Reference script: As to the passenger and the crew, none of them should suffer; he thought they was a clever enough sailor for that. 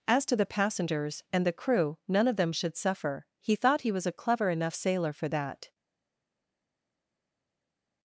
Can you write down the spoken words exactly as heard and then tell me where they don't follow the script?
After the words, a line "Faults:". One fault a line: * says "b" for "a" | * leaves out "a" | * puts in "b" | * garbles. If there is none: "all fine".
As to the passengers and the crew, none of them should suffer; he thought he was a clever enough sailor for that.
Faults:
* says "passengers" for "passenger"
* says "he" for "they"